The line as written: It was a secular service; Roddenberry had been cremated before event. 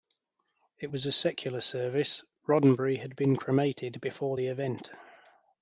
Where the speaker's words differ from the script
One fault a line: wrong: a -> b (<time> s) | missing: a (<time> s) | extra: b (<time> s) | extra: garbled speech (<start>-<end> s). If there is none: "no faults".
extra: the (4.3 s)